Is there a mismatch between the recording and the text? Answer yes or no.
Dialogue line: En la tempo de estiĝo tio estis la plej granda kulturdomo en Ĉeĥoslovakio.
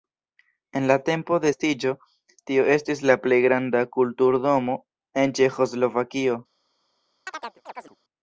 no